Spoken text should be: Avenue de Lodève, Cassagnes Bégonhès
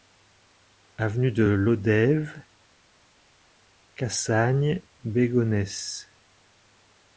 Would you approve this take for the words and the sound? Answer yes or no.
yes